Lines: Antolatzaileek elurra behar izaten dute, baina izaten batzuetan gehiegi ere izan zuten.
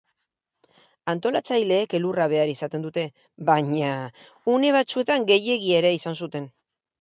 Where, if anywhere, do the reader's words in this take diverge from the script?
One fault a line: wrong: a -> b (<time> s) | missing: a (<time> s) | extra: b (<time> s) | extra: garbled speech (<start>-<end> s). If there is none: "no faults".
wrong: izaten -> une (4.5 s)